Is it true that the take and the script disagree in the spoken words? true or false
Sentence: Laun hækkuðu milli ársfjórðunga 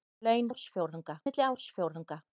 true